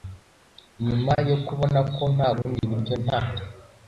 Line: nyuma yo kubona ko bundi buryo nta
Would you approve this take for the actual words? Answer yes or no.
no